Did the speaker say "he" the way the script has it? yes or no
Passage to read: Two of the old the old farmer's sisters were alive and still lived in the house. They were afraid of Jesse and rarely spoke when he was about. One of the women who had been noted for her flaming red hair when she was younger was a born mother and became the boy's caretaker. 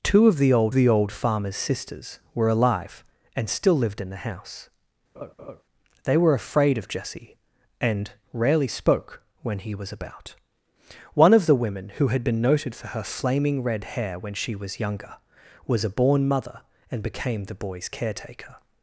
yes